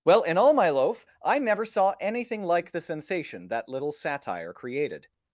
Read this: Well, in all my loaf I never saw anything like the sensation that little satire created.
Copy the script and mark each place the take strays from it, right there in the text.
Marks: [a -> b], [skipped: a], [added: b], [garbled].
Well, in all my loaf I never saw anything like the sensation that little satire created.